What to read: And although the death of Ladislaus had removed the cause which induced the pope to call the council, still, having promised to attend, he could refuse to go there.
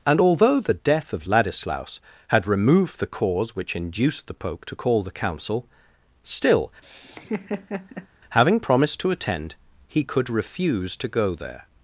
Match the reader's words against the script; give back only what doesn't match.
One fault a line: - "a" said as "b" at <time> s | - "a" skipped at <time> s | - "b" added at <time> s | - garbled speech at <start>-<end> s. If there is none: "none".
none